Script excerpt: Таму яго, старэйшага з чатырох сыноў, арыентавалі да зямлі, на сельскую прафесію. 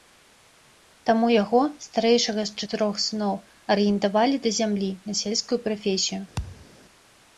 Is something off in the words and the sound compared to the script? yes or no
yes